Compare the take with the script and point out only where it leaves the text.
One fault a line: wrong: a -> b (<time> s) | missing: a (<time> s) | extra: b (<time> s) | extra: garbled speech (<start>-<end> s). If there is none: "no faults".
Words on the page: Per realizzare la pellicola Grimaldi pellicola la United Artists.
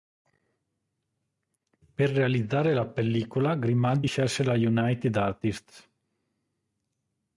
wrong: pellicola -> scelse (4.0 s)